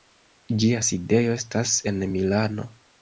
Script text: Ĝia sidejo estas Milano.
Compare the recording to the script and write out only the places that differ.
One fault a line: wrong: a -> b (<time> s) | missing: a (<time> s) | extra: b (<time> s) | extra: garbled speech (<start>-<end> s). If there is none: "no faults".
extra: en (1.9 s)